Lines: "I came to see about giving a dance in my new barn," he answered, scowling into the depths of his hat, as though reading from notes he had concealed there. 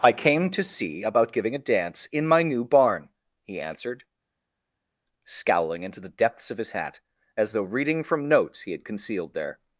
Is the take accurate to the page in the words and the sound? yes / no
yes